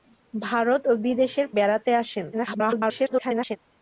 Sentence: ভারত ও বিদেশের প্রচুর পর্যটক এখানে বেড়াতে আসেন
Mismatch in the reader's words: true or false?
true